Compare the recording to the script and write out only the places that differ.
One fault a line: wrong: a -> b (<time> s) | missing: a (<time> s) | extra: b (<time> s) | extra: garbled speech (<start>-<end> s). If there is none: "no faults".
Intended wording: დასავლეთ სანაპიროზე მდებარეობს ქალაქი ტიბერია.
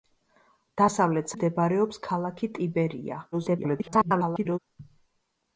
missing: სანაპიროზე (1.4 s)
extra: garbled speech (3.3-4.6 s)